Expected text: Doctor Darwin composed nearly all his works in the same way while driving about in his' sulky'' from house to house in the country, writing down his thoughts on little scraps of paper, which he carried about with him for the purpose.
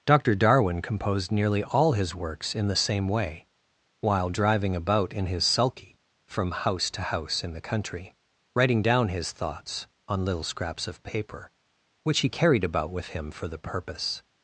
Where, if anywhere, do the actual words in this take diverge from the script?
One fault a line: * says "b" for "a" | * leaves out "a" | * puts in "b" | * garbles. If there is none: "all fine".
all fine